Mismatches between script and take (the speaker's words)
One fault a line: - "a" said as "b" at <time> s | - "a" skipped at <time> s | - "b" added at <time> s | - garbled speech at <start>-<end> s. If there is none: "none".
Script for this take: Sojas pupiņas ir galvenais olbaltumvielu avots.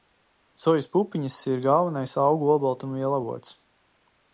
- "augu" added at 2.2 s